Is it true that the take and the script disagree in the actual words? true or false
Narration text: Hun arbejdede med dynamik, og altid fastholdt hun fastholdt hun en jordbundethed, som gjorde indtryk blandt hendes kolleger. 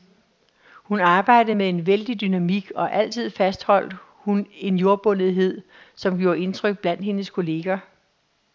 true